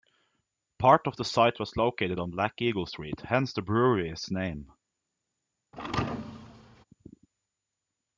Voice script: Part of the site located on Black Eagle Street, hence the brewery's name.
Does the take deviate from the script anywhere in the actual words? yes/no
yes